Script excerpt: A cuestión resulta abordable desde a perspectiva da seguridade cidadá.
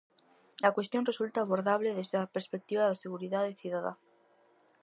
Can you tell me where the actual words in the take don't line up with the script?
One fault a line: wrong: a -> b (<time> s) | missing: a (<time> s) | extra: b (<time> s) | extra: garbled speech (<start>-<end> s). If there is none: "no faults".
no faults